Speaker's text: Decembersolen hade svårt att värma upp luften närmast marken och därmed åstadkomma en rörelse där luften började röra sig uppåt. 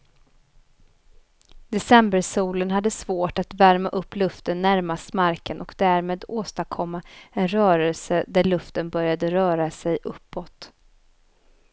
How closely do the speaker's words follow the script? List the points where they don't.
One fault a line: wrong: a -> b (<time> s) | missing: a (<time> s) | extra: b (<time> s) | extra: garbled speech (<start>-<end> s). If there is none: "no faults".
no faults